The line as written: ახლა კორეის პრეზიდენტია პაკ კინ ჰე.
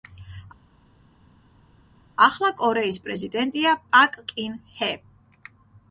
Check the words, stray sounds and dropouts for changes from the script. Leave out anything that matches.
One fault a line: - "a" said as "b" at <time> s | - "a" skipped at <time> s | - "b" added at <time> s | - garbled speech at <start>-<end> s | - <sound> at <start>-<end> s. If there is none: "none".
none